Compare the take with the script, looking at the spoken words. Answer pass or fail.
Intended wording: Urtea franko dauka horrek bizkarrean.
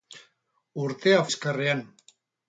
fail